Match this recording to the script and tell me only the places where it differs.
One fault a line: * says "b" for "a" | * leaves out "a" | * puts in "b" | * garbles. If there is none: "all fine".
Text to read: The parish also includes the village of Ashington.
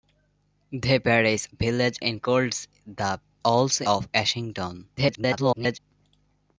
* says "village" for "also"
* says "also" for "village"
* garbles